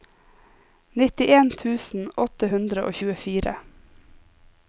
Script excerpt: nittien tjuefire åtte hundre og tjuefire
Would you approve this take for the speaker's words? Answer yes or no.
no